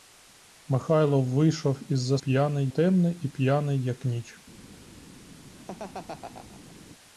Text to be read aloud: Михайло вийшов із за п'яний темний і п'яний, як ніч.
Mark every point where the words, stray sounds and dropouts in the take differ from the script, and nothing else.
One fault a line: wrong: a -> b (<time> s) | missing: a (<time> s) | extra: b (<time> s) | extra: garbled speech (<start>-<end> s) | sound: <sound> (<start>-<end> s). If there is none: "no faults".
sound: laugh (5.5-6.8 s)